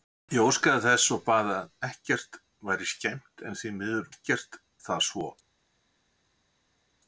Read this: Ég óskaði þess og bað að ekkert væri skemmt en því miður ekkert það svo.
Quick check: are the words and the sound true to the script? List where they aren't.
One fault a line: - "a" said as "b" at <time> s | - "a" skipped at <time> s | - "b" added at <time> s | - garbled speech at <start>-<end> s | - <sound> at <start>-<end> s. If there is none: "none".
none